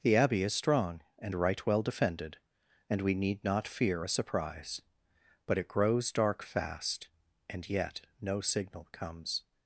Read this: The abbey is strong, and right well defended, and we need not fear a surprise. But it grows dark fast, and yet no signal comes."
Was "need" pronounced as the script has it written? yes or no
yes